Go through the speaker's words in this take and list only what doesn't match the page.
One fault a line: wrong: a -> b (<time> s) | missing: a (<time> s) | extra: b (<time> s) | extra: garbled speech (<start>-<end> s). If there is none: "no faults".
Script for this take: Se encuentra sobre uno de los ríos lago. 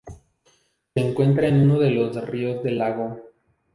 wrong: sobre -> en (1.4 s)
extra: del (2.6 s)